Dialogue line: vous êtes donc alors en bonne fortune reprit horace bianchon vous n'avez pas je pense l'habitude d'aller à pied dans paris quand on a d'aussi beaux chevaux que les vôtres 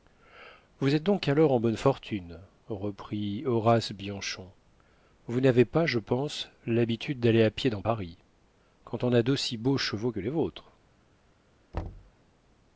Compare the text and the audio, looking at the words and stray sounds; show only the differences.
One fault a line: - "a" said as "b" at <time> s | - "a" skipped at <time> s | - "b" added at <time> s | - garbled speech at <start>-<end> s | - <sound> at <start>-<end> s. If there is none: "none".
- thud at 11.7-12.1 s